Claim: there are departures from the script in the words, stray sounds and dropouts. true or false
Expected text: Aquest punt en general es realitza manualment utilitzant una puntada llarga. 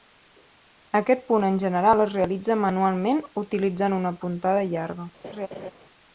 true